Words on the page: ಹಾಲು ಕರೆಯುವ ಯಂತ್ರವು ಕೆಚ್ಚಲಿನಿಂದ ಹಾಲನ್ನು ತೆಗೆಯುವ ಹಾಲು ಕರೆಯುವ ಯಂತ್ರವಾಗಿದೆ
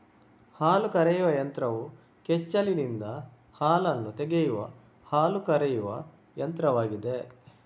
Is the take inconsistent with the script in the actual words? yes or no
no